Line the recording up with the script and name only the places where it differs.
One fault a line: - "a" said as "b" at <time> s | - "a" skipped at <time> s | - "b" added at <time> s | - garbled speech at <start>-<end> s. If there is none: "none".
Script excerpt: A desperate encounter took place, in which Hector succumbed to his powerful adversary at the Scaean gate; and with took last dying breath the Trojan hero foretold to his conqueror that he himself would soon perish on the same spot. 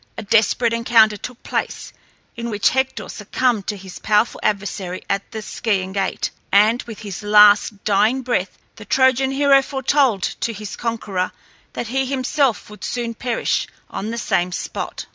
- "took" said as "his" at 7.0 s